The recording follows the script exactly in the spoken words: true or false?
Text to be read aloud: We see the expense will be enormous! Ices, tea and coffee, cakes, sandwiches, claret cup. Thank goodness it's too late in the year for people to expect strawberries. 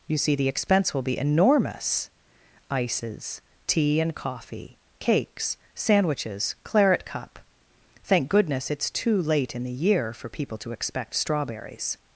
false